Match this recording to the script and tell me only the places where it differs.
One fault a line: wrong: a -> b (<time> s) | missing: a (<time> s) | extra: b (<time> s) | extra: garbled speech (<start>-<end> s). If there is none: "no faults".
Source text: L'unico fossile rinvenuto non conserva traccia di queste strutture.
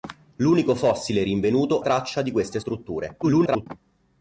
missing: non conserva (1.8 s)
extra: garbled speech (3.2-3.7 s)